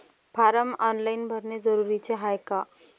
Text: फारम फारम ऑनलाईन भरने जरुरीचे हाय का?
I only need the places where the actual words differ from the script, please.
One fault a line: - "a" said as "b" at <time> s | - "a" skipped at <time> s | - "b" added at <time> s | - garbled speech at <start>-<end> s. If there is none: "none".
- "फारम" skipped at 0.7 s